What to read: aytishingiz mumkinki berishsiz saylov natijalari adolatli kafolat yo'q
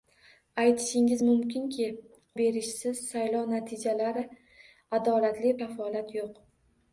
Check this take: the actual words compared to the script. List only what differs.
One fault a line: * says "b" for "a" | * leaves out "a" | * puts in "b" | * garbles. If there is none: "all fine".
all fine